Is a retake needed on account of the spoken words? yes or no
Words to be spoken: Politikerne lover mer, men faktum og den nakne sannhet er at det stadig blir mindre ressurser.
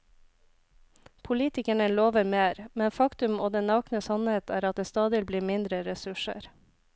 no